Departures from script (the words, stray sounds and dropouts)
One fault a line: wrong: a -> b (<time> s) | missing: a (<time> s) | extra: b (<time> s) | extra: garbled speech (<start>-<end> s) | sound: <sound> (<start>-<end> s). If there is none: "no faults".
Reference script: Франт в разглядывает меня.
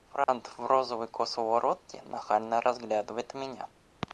sound: dropout (0.2-0.3 s)
extra: розовой косоворотке нахально (0.7 s)